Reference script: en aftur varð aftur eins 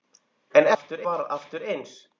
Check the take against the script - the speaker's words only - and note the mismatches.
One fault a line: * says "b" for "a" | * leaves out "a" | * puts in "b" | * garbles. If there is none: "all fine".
all fine